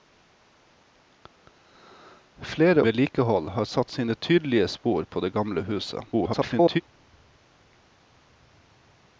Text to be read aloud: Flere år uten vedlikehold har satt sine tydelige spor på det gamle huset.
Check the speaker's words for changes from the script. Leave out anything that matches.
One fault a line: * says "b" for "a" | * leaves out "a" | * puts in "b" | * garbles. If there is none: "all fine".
* leaves out "år uten"
* garbles